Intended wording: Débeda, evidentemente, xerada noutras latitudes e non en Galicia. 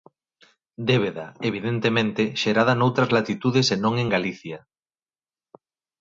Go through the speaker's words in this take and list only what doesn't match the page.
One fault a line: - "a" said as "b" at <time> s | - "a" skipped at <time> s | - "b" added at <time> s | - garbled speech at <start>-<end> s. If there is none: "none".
none